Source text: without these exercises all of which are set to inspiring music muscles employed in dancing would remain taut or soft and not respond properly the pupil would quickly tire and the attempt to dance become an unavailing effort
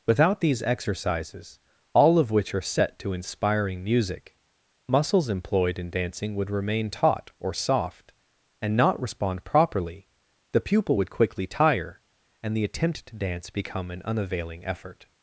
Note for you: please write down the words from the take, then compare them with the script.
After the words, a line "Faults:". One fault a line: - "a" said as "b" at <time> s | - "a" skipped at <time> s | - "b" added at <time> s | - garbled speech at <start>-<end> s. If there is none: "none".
without these exercises all of which are set to inspiring music muscles employed in dancing would remain taut or soft and not respond properly the pupil would quickly tire and the attempt to dance become an unavailing effort
Faults:
none